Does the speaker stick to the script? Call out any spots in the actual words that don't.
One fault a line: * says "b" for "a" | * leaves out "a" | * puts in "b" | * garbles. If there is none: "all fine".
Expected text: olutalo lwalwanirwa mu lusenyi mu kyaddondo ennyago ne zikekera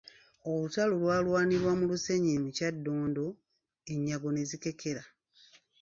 all fine